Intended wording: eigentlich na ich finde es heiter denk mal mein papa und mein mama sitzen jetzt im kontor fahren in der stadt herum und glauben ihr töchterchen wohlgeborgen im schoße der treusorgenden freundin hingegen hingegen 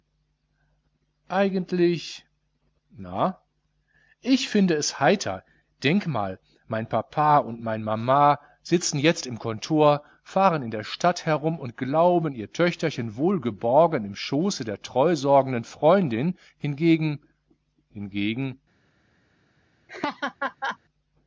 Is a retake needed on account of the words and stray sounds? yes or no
yes